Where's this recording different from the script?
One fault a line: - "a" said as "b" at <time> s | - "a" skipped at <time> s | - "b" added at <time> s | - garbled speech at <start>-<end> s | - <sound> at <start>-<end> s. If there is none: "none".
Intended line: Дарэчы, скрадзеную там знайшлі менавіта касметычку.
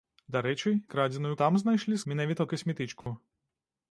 - dropout at 3.0-3.1 s